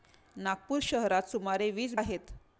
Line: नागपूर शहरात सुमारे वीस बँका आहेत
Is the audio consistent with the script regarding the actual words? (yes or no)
no